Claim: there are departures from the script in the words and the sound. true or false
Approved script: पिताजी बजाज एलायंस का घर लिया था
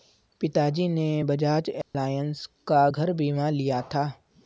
true